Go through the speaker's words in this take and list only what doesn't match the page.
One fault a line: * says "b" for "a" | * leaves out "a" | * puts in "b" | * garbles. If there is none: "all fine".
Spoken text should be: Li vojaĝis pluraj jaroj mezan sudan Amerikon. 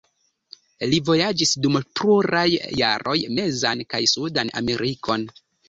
* puts in "dum"
* puts in "kaj"